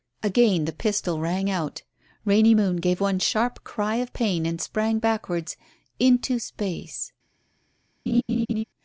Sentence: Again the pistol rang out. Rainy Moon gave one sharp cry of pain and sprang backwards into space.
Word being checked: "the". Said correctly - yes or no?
yes